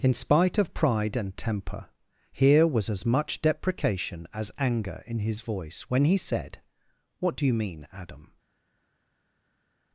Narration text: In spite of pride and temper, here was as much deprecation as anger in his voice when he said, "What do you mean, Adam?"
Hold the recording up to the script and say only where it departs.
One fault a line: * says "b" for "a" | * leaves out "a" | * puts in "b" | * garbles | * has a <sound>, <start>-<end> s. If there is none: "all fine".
all fine